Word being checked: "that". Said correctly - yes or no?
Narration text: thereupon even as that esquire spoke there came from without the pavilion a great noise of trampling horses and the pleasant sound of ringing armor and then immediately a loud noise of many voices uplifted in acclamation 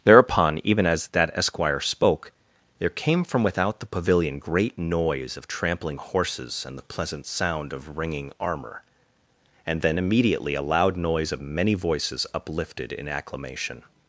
yes